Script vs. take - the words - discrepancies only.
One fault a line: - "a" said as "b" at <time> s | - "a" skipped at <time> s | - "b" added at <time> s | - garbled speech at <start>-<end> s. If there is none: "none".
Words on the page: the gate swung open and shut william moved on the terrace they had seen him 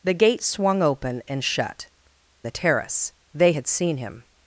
- "william moved on" skipped at 1.9 s